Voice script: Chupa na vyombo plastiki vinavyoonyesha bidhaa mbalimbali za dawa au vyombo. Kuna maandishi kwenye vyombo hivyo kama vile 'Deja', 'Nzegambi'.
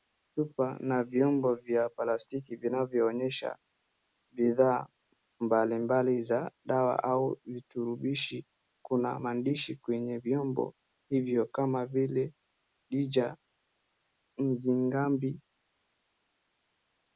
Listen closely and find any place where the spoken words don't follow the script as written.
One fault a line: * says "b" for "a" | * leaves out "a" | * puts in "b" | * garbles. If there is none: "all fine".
* puts in "vya"
* says "viturubishi" for "vyombo"